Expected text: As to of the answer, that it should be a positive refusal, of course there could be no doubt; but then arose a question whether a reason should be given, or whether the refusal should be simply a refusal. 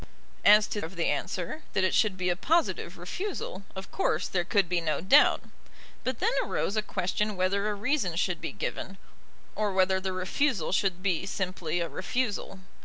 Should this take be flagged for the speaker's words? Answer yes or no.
no